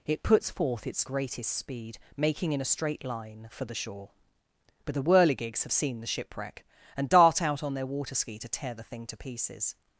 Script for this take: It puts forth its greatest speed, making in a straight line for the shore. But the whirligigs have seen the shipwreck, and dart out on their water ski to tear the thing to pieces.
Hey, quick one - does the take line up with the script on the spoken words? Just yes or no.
yes